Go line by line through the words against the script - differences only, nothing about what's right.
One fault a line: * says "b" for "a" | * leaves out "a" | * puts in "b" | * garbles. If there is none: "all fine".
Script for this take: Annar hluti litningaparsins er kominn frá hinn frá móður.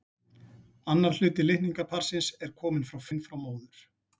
all fine